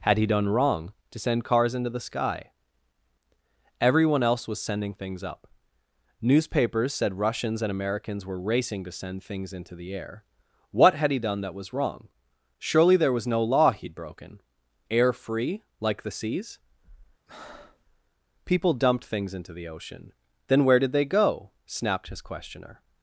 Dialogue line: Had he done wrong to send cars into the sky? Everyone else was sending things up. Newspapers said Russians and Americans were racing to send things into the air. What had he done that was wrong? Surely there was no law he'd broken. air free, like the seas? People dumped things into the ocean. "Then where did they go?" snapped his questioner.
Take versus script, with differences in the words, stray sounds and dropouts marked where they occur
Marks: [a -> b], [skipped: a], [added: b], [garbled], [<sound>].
Had he done wrong to send cars into the sky? Everyone else was sending things up. Newspapers said Russians and Americans were racing to send things into the air. What had he done that was wrong? Surely there was no law he'd broken. air free, like the seas? [breath] People dumped things into the ocean. "Then where did they go?" snapped his questioner.